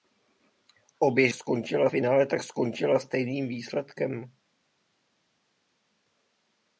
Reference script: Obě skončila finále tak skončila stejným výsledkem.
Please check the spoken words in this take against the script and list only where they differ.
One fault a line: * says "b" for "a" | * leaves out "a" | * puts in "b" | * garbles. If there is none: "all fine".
all fine